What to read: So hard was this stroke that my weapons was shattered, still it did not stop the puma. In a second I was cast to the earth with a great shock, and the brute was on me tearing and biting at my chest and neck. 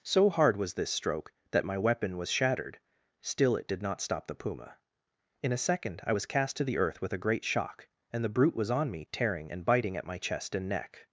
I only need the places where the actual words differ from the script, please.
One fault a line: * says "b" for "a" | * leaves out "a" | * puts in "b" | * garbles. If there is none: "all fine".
* says "weapon" for "weapons"